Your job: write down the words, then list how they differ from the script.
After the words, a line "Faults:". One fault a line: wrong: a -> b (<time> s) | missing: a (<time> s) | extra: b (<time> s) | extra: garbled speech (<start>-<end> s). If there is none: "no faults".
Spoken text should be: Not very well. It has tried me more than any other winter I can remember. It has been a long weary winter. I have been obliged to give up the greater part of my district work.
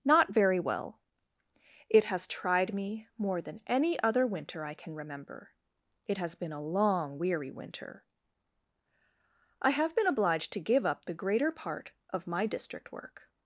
Not very well. It has tried me more than any other winter I can remember. It has been a long weary winter. I have been obliged to give up the greater part of my district work.
Faults:
no faults